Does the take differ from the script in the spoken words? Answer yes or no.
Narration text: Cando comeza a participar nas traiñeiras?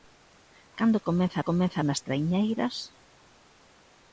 yes